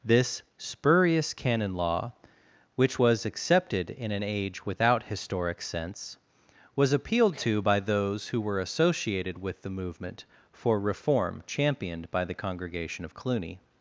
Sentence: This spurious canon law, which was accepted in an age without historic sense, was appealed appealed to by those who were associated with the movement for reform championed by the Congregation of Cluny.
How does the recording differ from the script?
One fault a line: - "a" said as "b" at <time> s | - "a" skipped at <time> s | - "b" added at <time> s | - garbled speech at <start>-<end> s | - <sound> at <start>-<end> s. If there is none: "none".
- "appealed" skipped at 7.4 s